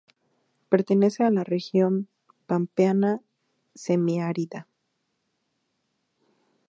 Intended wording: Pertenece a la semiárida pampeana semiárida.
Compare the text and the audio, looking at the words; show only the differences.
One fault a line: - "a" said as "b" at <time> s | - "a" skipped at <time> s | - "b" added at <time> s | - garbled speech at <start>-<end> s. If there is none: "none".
- "semiárida" said as "región" at 1.4 s